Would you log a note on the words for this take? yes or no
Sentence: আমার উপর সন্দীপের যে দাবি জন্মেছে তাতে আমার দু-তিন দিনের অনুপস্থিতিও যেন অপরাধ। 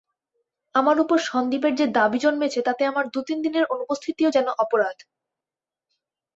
no